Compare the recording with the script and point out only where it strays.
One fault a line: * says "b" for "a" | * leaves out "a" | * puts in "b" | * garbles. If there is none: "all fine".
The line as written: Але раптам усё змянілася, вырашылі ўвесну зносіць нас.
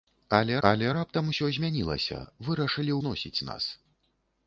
* puts in "але"
* leaves out "ўвесну"